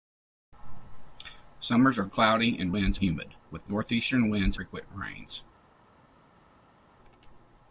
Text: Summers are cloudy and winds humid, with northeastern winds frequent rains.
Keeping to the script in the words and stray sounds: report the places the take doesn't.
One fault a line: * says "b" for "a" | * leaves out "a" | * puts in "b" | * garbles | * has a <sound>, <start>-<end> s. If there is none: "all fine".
all fine